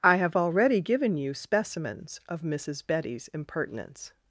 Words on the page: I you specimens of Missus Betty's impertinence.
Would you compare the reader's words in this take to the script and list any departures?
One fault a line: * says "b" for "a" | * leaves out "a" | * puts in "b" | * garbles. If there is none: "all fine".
* puts in "have already given"